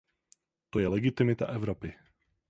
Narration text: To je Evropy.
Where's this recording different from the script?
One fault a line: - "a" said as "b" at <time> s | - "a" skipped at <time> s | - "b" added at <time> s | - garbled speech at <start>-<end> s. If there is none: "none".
- "legitimita" added at 0.8 s